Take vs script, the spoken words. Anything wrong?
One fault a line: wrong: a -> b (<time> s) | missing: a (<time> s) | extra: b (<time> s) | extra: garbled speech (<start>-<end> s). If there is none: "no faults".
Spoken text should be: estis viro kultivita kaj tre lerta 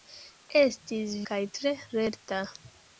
missing: viro kultivita (1.1 s)